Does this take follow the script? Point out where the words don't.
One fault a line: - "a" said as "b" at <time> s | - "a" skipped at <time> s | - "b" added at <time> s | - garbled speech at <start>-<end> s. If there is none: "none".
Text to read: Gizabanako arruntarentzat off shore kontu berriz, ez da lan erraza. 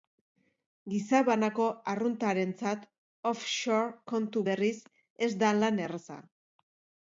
none